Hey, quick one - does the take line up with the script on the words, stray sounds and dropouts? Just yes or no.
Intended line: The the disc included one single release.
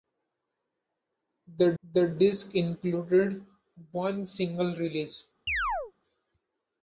no